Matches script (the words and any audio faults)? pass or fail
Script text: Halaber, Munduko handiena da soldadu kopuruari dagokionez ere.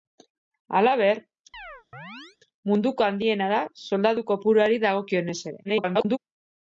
fail